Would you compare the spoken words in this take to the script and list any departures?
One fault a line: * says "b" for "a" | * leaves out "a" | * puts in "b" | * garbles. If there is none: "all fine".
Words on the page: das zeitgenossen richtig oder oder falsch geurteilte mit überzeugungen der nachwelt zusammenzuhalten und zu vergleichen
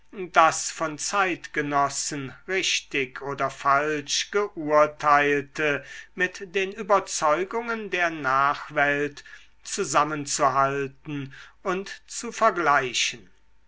* puts in "von"
* leaves out "oder"
* puts in "den"